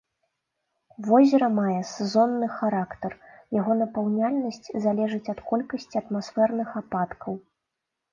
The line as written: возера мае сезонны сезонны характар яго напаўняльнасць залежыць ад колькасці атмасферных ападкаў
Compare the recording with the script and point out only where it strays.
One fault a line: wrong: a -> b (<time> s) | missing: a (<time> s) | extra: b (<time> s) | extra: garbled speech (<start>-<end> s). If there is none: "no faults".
missing: сезонны (2.5 s)